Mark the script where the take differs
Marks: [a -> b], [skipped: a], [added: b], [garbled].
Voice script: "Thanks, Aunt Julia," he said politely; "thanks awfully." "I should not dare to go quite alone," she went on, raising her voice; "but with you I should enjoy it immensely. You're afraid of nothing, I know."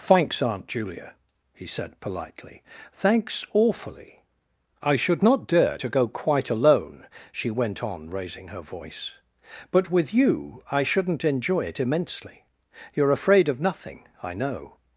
"Thanks, Aunt Julia," he said politely; "thanks awfully." "I should not dare to go quite alone," she went on, raising her voice; "but with you I [should -> shouldn't] enjoy it immensely. You're afraid of nothing, I know."